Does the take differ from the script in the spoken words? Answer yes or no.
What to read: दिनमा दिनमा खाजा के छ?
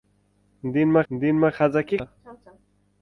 no